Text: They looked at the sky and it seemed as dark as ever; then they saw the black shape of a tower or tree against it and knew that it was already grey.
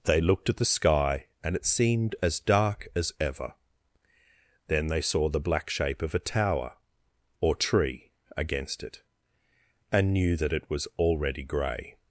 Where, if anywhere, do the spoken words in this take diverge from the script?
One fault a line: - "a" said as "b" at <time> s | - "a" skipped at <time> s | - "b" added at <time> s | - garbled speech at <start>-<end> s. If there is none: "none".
none